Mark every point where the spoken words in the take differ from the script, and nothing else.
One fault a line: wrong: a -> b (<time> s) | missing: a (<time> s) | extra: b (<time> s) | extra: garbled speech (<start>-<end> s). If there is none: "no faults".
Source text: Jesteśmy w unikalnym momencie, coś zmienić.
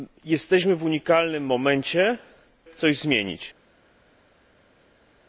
no faults